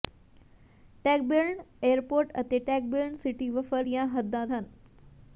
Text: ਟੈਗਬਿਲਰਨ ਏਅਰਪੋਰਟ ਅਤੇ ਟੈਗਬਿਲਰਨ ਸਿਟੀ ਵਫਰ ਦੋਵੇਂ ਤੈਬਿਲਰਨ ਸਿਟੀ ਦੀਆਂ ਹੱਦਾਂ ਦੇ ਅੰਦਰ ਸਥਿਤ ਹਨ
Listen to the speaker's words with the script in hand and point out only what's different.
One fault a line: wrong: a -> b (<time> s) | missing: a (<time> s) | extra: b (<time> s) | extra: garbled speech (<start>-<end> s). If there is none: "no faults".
missing: ਦੋਵੇਂ ਤੈਬਿਲਰਨ ਸਿਟੀ (3.8 s)
missing: ਦੇ ਅੰਦਰ ਸਥਿਤ (4.5 s)